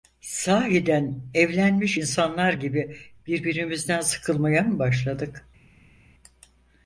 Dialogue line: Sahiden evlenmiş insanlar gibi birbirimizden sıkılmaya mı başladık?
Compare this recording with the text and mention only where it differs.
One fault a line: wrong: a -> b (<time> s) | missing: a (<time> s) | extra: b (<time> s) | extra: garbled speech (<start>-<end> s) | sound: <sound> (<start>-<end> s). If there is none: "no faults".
no faults